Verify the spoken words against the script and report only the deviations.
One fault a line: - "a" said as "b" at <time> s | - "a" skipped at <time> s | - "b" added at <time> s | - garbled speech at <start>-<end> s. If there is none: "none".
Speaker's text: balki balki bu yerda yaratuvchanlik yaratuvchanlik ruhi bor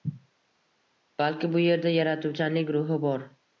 - "balki" skipped at 1.5 s
- "yaratuvchanlik" skipped at 2.7 s